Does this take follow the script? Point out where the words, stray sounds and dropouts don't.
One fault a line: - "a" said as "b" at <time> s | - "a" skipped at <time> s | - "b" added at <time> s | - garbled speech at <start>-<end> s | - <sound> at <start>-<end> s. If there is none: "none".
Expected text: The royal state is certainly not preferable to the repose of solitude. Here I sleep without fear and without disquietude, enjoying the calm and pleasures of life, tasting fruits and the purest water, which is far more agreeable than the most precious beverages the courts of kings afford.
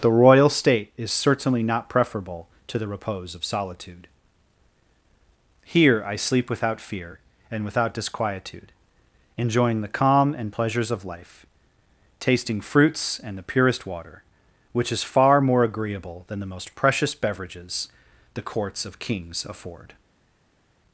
none